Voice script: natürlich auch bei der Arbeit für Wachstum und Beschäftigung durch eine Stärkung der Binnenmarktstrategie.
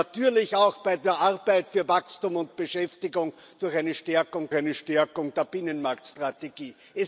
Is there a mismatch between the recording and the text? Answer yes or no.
yes